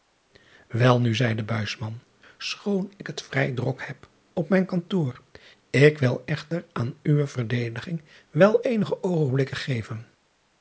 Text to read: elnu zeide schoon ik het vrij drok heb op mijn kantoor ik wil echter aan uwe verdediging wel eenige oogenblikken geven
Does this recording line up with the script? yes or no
yes